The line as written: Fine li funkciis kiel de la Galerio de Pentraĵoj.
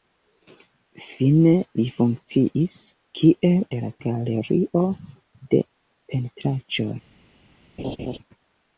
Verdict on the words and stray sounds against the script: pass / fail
fail